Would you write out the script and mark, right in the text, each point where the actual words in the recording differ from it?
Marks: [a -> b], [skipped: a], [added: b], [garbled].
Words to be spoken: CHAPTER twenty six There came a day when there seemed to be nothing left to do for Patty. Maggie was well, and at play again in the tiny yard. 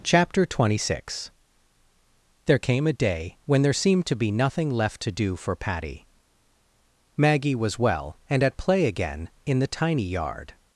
CHAPTER twenty six There came a day when there seemed to be nothing left to do for Patty. Maggie was well, and at play again in the tiny yard.